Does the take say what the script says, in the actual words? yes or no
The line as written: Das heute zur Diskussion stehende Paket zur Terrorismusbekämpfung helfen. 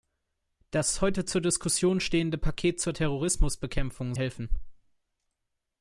yes